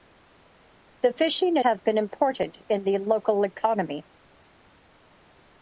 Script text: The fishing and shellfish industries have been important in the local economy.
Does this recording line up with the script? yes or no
no